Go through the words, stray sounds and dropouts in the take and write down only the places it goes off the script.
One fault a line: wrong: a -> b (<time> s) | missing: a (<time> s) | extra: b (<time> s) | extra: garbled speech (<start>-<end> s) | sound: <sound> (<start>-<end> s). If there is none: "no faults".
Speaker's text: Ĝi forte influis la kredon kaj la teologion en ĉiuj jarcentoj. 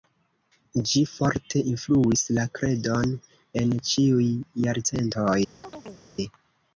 missing: kaj la teologion (3.1 s)
sound: chirp (5.6-6.1 s)